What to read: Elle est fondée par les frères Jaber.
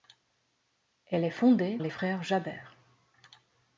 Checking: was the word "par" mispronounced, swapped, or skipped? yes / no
yes